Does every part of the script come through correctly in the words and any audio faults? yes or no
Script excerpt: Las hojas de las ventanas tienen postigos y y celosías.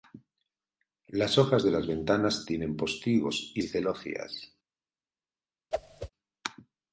no